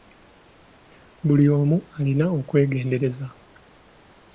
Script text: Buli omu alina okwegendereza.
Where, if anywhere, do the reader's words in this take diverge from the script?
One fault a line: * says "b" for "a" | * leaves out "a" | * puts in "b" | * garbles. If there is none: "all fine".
all fine